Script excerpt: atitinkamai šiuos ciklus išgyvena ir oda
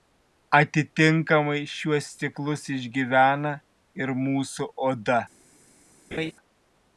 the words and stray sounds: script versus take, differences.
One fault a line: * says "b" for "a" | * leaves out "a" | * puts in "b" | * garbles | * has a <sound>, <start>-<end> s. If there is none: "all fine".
* puts in "mūsų"
* has a laugh, 6.1-6.3 s